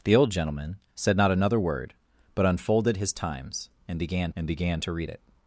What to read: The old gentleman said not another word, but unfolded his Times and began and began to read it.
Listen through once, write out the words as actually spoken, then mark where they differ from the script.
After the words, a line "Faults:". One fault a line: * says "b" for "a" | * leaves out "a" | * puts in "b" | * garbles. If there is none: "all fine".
The old gentleman said not another word, but unfolded his Times and began and began to read it.
Faults:
all fine